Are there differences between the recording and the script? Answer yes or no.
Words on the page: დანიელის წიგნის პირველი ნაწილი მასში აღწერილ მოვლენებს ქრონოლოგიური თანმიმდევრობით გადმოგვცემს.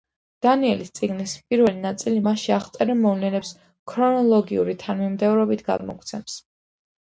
no